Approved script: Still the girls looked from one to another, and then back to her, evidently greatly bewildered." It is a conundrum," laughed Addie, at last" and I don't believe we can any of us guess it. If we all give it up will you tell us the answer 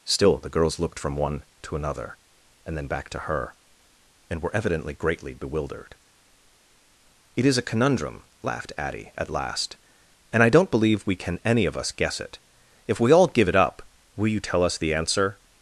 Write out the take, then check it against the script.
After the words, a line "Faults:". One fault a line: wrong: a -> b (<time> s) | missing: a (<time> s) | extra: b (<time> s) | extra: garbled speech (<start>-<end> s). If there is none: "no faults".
Still the girls looked from one to another, and then back to her, and were evidently greatly bewildered." It is a conundrum," laughed Addie, at last" and I don't believe we can any of us guess it. If we all give it up will you tell us the answer
Faults:
extra: and were (4.3 s)